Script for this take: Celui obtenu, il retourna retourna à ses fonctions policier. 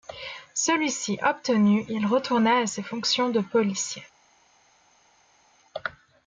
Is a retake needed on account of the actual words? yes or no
yes